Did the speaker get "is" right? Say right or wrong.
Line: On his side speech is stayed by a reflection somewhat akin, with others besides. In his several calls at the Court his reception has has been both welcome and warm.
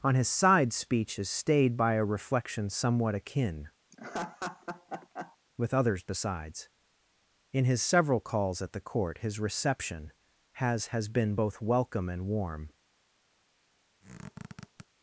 right